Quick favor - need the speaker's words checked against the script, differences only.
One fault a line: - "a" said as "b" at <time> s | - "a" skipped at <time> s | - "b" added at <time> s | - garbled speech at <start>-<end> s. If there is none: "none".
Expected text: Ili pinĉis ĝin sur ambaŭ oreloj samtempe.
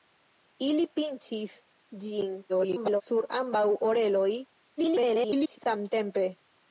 - garbled speech at 2.5-3.0 s
- garbled speech at 4.8-5.6 s